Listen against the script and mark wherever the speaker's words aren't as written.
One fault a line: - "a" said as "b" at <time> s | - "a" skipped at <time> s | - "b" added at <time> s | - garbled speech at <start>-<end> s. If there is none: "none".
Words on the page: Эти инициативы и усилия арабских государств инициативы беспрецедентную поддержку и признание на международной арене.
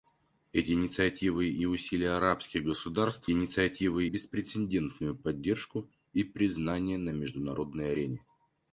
none